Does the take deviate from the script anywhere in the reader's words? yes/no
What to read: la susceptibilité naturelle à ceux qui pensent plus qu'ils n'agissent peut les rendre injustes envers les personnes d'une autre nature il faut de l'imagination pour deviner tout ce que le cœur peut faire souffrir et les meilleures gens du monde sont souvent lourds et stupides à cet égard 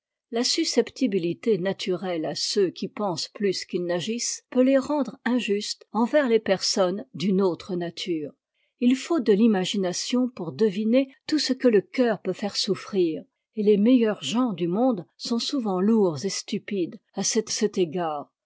yes